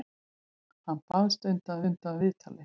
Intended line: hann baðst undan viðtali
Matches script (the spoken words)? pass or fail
fail